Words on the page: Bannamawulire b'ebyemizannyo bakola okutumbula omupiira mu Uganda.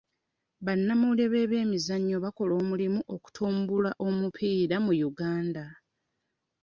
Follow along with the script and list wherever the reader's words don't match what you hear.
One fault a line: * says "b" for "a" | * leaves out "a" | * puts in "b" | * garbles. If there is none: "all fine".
* puts in "omulimu"